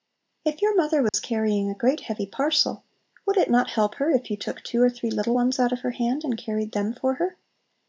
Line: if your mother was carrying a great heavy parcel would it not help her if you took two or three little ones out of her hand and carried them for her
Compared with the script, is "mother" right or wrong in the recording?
right